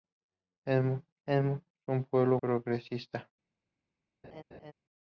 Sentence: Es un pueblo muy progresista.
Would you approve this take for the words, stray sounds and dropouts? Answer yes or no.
no